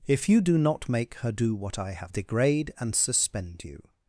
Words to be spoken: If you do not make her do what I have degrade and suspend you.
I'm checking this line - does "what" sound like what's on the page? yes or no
yes